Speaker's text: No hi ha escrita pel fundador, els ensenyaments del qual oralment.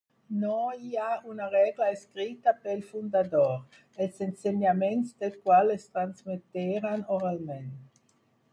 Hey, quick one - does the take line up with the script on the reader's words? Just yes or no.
no